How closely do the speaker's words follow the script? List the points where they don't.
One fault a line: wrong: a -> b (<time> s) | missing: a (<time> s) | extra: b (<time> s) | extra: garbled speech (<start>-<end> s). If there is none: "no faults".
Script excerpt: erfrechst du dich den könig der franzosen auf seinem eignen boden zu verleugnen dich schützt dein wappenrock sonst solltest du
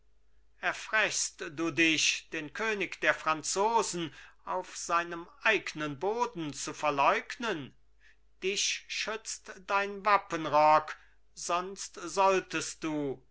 no faults